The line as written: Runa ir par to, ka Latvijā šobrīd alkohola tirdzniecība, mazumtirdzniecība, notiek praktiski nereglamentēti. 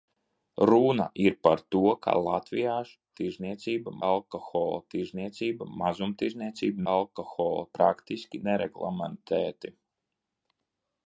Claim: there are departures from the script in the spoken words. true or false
true